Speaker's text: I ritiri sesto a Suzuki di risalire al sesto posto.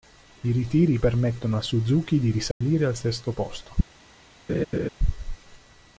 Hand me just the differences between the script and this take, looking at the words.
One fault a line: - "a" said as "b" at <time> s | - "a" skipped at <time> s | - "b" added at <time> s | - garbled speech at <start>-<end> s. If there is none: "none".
- "sesto" said as "permettono" at 0.9 s